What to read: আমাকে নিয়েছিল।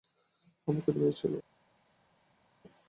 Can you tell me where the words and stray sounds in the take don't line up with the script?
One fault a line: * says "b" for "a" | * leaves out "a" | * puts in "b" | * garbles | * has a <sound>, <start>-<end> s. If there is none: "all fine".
all fine